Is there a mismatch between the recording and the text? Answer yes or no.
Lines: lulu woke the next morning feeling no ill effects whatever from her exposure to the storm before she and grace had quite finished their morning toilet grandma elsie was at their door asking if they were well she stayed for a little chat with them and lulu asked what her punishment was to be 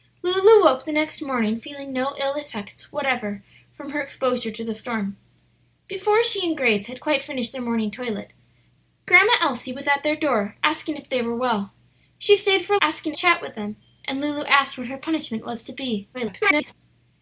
yes